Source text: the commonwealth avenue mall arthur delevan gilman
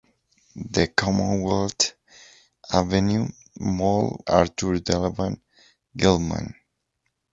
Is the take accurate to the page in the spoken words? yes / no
yes